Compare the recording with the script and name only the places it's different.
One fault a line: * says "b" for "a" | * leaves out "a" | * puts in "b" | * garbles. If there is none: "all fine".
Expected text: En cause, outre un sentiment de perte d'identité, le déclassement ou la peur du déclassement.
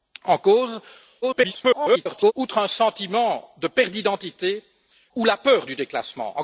* garbles
* leaves out "le déclassement"